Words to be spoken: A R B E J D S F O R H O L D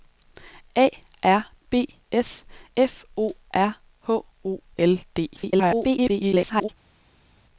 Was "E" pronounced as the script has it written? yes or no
no